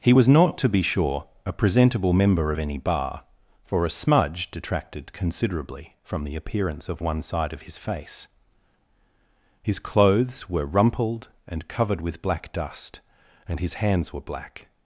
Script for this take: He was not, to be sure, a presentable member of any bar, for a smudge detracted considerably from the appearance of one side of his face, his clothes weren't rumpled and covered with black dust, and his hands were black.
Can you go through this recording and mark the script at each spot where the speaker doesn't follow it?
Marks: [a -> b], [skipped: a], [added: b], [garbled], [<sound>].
He was not, to be sure, a presentable member of any bar, for a smudge detracted considerably from the appearance of one side of his face, his clothes [weren't -> were] rumpled and covered with black dust, and his hands were black.